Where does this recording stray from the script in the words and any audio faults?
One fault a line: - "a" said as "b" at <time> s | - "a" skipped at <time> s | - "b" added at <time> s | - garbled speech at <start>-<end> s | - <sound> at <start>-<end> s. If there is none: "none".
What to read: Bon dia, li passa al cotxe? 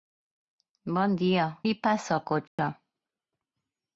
- dropout at 2.5-2.6 s